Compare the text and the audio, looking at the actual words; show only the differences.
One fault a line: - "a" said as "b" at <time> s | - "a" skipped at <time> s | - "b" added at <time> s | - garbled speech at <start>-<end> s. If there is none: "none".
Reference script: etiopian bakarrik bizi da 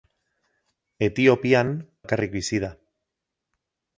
none